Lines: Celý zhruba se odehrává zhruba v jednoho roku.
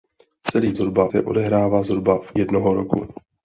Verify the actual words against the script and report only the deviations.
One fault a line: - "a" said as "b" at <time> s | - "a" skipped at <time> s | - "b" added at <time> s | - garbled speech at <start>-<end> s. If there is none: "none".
none